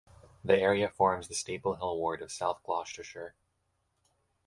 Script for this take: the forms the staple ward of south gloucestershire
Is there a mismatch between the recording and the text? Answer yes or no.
yes